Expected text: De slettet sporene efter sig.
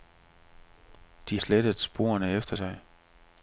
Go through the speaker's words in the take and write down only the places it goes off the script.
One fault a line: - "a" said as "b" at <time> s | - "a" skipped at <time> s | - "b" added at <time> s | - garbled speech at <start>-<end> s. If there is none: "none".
none